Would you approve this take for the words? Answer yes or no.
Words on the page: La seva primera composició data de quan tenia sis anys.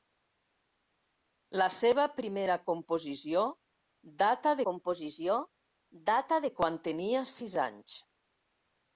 no